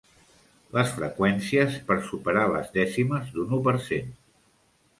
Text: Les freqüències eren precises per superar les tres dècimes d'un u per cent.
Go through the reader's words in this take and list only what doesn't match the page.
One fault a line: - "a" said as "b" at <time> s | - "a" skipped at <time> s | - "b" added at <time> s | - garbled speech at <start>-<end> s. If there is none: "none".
- "eren precises" skipped at 1.8 s
- "tres" skipped at 2.7 s